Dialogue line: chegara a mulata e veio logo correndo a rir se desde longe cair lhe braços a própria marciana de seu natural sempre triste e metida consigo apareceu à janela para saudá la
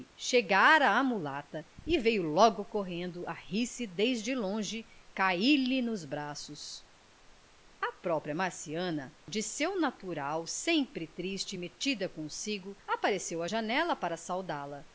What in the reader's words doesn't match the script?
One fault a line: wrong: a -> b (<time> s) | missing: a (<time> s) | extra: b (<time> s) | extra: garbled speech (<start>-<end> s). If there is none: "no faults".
extra: nos (5.8 s)